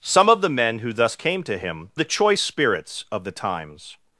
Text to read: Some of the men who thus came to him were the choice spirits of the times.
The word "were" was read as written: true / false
false